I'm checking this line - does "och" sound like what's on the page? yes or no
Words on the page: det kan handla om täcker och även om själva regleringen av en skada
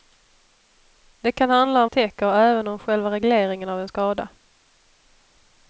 yes